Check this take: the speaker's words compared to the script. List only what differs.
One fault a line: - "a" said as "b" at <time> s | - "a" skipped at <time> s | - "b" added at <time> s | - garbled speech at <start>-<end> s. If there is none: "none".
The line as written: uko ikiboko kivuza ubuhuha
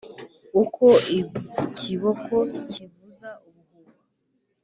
none